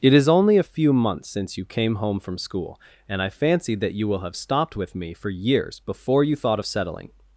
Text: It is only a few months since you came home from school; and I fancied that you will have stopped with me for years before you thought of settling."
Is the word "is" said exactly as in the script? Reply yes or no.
yes